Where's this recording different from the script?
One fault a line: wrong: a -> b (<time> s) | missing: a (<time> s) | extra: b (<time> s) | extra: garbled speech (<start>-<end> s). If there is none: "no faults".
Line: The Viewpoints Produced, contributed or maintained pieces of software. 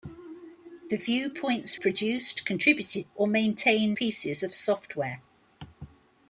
no faults